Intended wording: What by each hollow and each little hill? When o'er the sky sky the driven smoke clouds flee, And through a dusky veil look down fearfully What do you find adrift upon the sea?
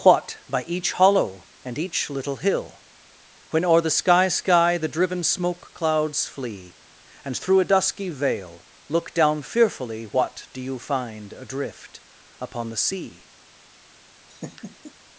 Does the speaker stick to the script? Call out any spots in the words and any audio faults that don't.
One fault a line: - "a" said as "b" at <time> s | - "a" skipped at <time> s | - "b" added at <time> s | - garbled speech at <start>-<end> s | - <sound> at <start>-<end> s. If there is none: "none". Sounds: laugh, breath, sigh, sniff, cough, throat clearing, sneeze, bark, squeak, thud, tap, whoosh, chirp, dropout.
- laugh at 14.3-14.9 s